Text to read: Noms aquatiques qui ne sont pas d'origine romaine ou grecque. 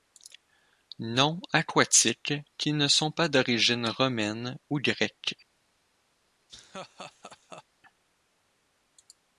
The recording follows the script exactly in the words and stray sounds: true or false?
false